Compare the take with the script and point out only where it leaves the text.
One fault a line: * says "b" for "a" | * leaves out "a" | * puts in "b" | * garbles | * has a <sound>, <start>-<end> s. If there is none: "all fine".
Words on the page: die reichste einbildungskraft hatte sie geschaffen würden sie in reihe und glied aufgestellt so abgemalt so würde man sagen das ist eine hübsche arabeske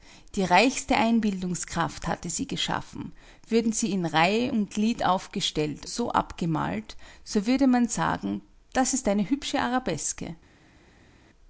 all fine